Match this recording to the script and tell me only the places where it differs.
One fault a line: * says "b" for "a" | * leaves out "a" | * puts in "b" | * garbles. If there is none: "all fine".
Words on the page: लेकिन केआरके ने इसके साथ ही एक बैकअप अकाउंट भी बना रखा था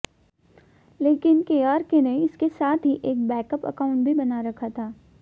all fine